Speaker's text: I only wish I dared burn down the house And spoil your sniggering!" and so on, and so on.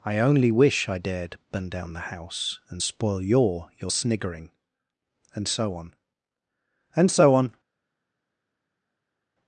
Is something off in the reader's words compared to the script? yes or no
yes